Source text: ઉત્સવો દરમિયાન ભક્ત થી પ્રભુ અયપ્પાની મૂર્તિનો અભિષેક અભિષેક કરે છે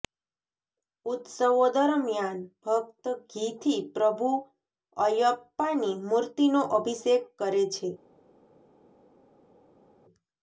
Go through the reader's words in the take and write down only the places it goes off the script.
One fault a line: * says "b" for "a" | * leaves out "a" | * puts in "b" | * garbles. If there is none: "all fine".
* puts in "ઘી"
* leaves out "અભિષેક"